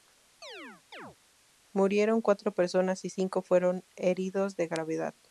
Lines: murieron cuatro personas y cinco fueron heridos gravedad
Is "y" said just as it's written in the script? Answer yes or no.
yes